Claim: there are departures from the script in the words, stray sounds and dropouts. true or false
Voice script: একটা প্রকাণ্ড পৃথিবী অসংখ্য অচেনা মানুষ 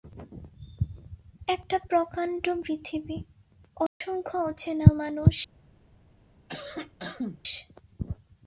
true